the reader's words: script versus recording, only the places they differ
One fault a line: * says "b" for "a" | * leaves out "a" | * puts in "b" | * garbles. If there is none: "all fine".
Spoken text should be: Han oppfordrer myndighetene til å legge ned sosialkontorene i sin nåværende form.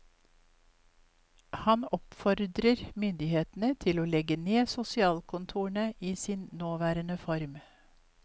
all fine